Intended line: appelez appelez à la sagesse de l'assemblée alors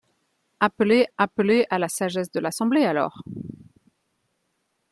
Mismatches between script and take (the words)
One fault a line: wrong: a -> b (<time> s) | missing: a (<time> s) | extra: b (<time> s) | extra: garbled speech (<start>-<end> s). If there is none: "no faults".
no faults